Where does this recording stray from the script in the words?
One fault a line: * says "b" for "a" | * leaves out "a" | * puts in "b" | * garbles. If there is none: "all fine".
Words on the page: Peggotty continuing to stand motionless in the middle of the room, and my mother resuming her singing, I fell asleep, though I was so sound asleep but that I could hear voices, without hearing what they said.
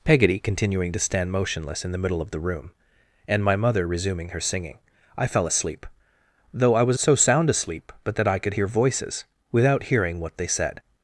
all fine